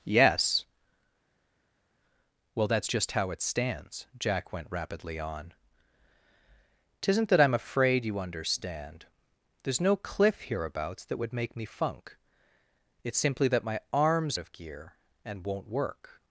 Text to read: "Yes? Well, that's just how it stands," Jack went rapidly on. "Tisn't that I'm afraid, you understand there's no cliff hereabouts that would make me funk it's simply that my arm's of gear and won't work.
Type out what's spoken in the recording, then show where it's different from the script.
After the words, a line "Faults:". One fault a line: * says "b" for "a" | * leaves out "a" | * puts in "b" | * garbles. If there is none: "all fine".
"Yes? Well, that's just how it stands," Jack went rapidly on. "Tisn't that I'm afraid, you understand there's no cliff hereabouts that would make me funk it's simply that my arm's of gear and won't work.
Faults:
all fine